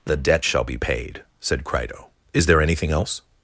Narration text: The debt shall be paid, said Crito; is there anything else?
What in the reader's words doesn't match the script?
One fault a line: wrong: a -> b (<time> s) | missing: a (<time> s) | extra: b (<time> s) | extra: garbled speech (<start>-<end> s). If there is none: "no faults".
no faults